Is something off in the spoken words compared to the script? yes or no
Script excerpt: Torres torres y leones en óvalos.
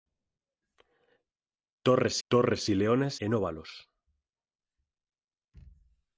no